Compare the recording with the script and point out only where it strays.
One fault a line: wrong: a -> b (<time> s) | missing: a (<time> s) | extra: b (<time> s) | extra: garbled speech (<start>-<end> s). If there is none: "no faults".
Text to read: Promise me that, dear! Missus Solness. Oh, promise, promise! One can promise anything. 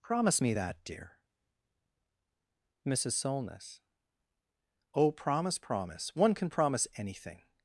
no faults